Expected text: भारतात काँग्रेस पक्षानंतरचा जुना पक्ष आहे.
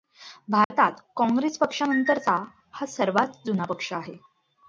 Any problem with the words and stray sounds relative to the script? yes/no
yes